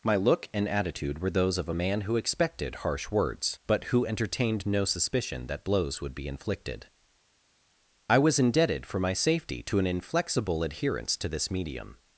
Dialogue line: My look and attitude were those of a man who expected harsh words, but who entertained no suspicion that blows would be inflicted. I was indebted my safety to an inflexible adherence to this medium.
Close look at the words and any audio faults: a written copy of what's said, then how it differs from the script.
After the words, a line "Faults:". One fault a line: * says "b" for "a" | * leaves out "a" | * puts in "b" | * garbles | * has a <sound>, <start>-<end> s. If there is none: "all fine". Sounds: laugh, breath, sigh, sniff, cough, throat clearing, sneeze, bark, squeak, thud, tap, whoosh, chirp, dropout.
My look and attitude were those of a man who expected harsh words, but who entertained no suspicion that blows would be inflicted. I was indebted for my safety to an inflexible adherence to this medium.
Faults:
* puts in "for"